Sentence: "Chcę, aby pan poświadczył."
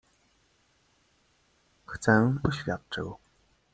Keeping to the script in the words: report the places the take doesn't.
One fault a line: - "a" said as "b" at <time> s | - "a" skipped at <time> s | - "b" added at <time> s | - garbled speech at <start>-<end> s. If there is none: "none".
- "aby pan" skipped at 2.3 s